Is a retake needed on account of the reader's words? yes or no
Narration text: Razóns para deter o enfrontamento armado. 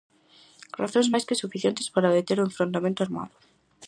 yes